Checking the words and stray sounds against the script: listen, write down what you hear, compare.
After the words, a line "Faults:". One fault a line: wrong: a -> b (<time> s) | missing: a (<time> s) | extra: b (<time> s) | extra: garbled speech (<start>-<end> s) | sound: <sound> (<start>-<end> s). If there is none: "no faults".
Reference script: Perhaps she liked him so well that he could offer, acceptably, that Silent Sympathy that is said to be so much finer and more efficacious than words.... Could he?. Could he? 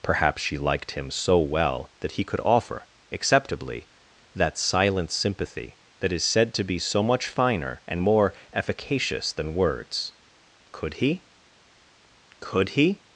Perhaps she liked him so well that he could offer, acceptably, that Silent Sympathy that is said to be so much finer and more efficacious than words.... Could he?. Could he?
Faults:
no faults